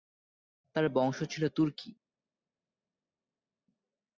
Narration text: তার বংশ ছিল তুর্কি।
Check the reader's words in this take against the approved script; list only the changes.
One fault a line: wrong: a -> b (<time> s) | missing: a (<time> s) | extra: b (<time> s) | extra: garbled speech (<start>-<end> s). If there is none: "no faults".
no faults